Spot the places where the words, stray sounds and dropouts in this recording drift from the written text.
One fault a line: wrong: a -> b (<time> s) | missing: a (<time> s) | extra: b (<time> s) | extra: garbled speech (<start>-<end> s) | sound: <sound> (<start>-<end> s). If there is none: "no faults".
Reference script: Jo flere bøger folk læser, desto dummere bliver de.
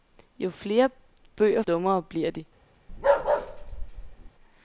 missing: folk læser desto (1.6 s)
sound: bark (2.9-4.3 s)